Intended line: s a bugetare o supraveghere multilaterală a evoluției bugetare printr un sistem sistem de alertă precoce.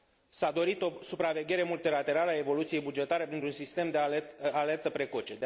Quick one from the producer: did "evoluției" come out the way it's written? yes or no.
yes